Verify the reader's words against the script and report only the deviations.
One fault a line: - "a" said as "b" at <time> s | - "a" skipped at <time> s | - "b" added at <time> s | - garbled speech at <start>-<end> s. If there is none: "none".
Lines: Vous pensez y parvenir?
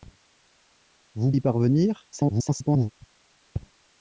- "pensez" skipped at 1.3 s
- garbled speech at 2.1-2.9 s